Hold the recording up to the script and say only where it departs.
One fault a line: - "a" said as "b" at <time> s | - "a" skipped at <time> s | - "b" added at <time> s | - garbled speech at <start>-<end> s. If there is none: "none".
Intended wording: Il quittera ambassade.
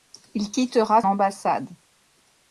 none